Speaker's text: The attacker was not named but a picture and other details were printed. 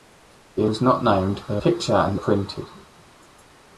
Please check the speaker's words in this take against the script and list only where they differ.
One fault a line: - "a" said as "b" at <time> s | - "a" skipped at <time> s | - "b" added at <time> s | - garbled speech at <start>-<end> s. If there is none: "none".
- "attacker" skipped at 0.7 s
- "a" skipped at 1.6 s
- "other details were" skipped at 2.2 s